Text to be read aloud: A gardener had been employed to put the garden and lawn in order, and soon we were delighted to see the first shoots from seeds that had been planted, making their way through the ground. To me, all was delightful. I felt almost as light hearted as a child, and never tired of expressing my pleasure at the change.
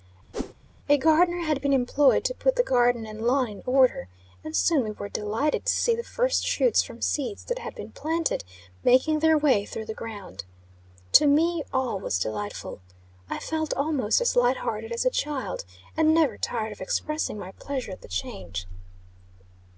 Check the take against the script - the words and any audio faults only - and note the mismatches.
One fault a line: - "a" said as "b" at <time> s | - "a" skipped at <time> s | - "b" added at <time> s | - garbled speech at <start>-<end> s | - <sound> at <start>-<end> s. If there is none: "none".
- whoosh at 0.3-0.5 s